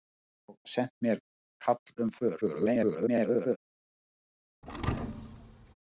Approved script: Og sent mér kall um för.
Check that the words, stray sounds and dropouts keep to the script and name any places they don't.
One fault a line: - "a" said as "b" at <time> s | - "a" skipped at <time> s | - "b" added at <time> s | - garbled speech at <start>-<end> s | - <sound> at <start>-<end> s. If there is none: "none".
- garbled speech at 2.4-3.6 s
- thud at 4.6-5.7 s